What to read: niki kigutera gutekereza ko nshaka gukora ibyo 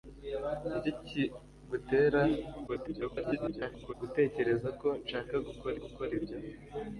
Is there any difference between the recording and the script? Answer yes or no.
yes